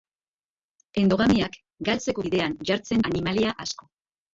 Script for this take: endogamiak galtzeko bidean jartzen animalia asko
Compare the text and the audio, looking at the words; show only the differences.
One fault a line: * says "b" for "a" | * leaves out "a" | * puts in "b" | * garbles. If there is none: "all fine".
all fine